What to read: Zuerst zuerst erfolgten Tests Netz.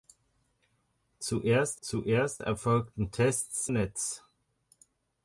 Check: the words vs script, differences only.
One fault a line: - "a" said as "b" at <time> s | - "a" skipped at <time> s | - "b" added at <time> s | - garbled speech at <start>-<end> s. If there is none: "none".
none